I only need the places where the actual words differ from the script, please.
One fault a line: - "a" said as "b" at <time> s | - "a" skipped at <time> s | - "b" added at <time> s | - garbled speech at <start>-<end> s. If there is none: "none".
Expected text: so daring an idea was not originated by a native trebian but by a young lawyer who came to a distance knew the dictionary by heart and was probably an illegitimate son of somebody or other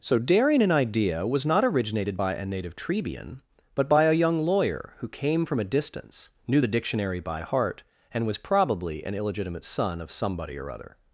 - "to" said as "from" at 5.4 s